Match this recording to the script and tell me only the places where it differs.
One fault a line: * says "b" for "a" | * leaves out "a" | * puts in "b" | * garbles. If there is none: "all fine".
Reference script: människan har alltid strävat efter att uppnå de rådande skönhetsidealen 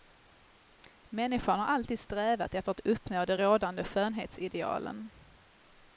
all fine